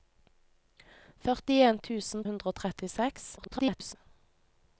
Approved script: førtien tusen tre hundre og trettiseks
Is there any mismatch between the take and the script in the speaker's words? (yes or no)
yes